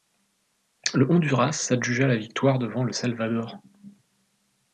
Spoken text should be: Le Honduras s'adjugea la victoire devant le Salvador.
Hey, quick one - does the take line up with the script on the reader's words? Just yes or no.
yes